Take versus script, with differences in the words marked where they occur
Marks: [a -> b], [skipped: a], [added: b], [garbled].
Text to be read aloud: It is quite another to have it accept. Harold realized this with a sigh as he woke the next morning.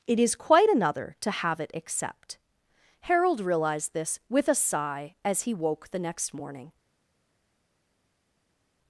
It is quite another to have it accept. Harold realized this with a sigh as he woke the next morning.